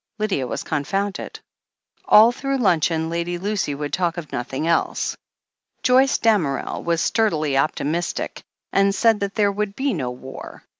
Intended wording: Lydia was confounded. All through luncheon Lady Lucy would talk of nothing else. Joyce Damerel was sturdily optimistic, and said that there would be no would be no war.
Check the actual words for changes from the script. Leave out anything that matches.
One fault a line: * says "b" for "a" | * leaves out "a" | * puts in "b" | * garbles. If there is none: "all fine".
* leaves out "would be no"